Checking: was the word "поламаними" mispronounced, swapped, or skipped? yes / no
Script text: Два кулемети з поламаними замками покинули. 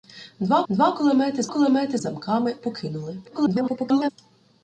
yes